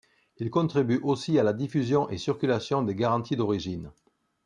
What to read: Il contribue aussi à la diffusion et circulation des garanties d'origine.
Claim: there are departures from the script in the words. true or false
false